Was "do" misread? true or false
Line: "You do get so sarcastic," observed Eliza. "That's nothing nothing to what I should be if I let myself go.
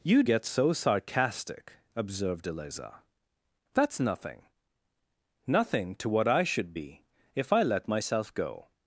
true